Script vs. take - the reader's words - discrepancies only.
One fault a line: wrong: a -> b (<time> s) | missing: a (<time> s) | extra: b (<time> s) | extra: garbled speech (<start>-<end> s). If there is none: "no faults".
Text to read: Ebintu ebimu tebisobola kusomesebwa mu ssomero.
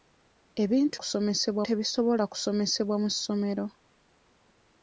wrong: ebimu -> kusomesebwa (1.0 s)